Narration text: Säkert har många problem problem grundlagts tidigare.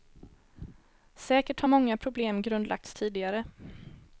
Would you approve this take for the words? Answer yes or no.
no